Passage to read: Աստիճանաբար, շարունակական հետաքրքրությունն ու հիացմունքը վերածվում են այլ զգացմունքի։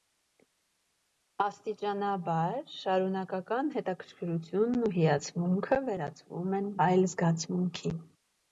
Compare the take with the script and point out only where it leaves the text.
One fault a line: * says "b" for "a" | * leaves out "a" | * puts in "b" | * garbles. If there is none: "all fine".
all fine